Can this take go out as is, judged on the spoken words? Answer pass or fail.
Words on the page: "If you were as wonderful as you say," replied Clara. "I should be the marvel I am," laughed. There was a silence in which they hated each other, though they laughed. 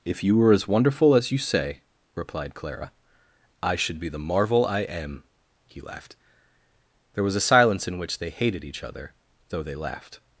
fail